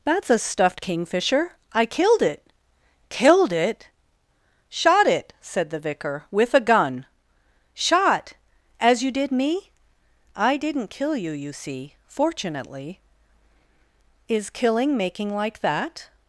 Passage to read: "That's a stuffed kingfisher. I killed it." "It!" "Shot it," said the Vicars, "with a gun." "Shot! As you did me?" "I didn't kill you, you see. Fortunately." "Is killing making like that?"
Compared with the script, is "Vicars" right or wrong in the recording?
wrong